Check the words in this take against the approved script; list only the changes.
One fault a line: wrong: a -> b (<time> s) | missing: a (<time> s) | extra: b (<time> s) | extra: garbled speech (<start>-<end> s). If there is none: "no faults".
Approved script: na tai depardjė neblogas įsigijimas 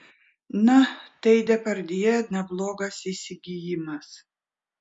no faults